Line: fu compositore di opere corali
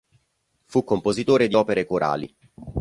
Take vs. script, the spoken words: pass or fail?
pass